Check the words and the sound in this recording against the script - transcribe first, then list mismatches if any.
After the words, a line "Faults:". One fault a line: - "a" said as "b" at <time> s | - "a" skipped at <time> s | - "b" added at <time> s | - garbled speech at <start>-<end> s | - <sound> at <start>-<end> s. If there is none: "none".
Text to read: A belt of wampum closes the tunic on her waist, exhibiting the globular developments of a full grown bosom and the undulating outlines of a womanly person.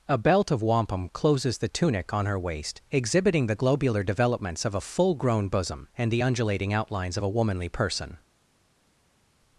A belt of wampum closes the tunic on her waist, exhibiting the globular developments of a full grown bosom and the undulating outlines of a womanly person.
Faults:
none